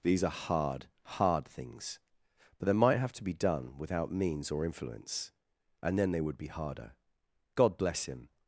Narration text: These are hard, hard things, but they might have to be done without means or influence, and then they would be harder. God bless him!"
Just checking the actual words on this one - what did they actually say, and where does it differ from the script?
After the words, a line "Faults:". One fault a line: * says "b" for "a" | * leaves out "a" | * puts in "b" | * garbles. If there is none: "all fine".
These are hard, hard things, but they might have to be done without means or influence, and then they would be harder. God bless him!"
Faults:
all fine